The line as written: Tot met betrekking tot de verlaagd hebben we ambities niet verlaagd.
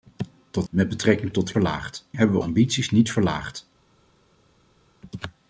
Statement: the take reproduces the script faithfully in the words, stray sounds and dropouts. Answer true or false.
true